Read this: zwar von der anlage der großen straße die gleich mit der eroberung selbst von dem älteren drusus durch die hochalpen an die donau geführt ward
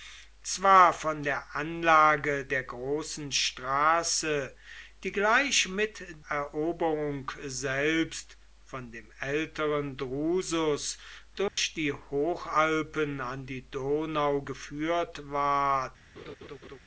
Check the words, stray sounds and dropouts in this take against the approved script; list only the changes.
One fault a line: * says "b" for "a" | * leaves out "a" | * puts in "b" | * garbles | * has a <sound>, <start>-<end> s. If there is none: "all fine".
* leaves out "der"
* has a dropout, 11.5-11.6 s
* has a laugh, 16.2-16.8 s